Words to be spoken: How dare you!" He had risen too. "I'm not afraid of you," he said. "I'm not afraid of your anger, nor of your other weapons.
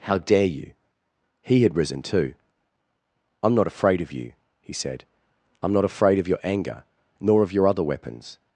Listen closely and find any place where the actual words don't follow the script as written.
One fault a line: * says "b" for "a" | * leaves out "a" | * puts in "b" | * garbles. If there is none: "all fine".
all fine